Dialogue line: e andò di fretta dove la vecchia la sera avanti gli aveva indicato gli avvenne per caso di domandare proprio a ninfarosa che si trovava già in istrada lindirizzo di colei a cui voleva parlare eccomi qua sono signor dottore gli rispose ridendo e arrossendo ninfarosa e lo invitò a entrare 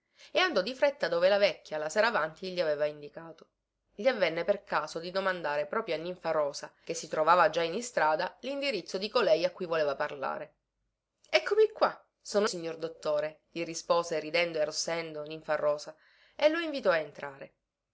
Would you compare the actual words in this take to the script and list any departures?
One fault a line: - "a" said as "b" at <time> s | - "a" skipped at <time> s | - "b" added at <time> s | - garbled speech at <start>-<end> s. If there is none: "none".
none